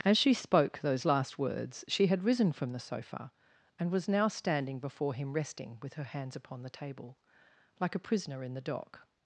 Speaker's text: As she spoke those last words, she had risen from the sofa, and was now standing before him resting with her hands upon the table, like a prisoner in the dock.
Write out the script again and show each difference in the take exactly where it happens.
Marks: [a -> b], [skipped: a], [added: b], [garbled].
As she spoke those last words, she had risen from the sofa, and was now standing before him resting with her hands upon the table, like a prisoner in the dock.